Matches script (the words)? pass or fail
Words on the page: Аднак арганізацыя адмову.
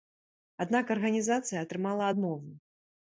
fail